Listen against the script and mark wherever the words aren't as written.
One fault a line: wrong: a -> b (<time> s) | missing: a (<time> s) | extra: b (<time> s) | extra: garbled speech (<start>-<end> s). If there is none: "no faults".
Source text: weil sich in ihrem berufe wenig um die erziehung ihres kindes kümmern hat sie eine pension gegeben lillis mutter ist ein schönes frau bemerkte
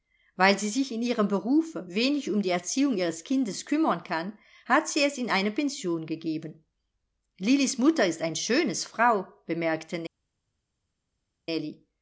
extra: sie (0.6 s)
extra: kann (4.0 s)
extra: es in (5.0 s)